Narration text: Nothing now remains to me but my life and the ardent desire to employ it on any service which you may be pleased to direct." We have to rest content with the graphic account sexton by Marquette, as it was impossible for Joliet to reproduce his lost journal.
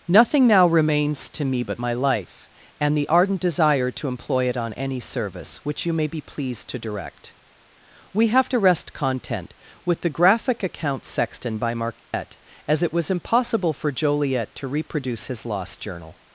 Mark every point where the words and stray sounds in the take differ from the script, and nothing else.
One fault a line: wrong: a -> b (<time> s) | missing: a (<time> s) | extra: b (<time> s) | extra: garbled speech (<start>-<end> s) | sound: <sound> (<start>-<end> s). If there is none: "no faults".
sound: dropout (12.0-12.1 s)